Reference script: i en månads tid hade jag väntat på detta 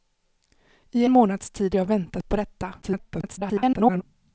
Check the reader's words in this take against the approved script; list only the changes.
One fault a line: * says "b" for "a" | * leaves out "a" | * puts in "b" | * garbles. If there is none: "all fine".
* leaves out "en"
* leaves out "hade"
* garbles